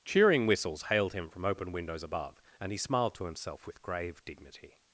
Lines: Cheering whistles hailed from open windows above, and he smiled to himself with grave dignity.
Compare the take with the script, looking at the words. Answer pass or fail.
fail